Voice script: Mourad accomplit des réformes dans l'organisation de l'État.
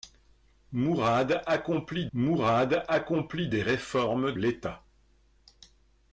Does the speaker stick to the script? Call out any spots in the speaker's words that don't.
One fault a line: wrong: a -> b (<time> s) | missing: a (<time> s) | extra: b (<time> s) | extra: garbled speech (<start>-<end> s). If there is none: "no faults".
extra: mourad accomplit (2.1 s)
missing: dans l'organisation de (4.3 s)